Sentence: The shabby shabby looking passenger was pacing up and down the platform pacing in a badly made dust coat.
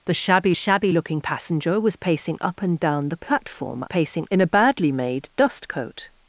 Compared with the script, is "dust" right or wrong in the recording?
right